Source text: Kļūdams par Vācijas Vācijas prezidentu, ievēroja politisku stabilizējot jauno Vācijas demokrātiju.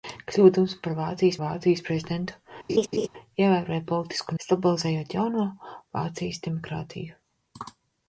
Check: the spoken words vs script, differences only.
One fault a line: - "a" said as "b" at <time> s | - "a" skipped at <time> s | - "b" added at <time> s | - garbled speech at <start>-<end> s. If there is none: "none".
none